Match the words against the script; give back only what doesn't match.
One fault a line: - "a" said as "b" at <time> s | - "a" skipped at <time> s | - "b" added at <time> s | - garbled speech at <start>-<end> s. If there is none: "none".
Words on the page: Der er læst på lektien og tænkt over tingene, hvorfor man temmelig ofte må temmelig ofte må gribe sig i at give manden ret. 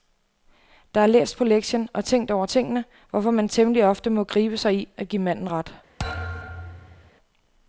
- "temmelig ofte må" skipped at 4.2 s